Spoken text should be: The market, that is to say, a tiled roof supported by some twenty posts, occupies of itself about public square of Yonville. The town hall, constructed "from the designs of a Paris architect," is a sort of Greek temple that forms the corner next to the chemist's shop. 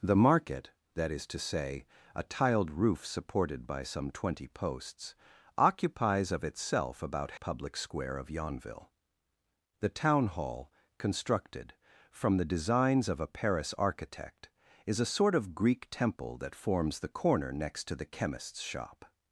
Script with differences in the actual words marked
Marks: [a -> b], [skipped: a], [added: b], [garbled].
The market, that is to say, a tiled roof supported by some twenty posts, occupies of itself about public square of Yonville. The town hall, constructed "from the designs of a Paris architect," is a sort of Greek temple that forms the corner next to the chemist's shop.